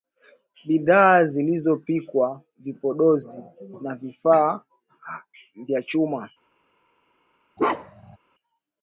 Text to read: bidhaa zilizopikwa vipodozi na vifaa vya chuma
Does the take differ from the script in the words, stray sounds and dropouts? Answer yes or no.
yes